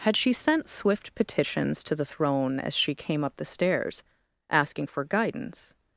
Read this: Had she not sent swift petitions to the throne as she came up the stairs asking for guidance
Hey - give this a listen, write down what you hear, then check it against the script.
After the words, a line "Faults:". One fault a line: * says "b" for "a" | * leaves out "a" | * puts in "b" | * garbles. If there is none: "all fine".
Had she sent swift petitions to the throne as she came up the stairs asking for guidance
Faults:
* leaves out "not"